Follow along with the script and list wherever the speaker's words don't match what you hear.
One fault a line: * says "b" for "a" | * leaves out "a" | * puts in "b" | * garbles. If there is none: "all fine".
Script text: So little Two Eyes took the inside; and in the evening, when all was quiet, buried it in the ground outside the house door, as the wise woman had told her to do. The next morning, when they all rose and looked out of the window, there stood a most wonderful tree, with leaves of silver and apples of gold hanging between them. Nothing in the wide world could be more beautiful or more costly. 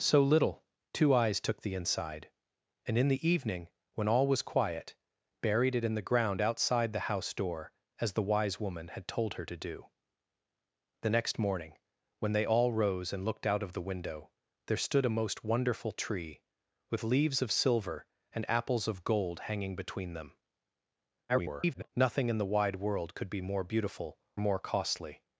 * garbles
* leaves out "or"